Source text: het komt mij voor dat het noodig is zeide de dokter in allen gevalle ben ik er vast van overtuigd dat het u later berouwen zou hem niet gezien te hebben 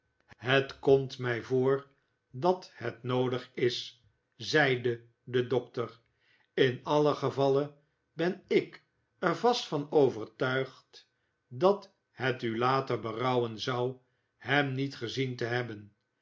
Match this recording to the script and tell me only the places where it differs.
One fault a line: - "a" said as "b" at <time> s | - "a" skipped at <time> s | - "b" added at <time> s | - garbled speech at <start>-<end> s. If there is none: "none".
none